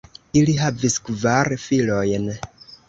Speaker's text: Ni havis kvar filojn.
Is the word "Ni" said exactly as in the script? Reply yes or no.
no